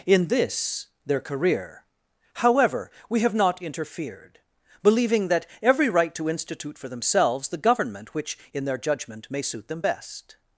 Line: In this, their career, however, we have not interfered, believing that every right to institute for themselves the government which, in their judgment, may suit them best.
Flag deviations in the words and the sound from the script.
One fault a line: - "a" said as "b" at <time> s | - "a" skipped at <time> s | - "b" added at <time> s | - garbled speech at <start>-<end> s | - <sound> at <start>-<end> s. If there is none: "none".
none